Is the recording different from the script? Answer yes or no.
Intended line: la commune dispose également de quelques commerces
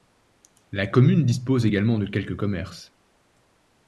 no